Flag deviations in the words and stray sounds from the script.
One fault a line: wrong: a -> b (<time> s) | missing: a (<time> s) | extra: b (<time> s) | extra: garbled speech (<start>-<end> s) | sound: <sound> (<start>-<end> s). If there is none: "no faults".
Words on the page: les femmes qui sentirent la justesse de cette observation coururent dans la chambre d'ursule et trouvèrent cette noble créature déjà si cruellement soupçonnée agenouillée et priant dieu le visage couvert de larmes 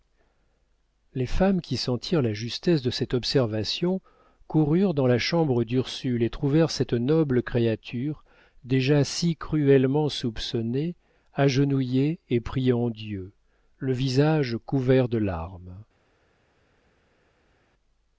no faults